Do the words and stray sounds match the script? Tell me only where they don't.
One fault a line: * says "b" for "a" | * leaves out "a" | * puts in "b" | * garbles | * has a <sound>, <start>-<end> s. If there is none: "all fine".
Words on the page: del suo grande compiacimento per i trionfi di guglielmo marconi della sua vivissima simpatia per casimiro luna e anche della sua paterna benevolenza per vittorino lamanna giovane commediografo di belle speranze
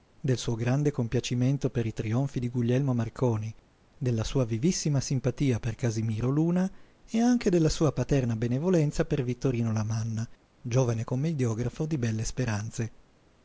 all fine